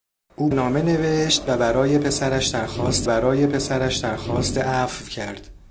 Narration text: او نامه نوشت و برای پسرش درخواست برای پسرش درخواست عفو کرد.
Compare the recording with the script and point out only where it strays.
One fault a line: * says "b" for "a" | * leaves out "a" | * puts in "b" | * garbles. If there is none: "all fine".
all fine